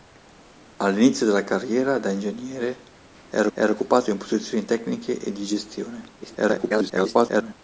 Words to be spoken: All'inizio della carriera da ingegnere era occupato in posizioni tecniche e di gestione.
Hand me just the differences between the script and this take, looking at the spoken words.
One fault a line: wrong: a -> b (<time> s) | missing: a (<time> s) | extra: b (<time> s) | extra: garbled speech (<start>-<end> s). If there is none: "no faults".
extra: era (3.5 s)
extra: garbled speech (6.2-7.5 s)